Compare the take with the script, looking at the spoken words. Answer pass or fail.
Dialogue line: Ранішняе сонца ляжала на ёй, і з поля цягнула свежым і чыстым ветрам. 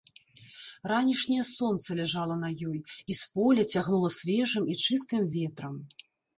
pass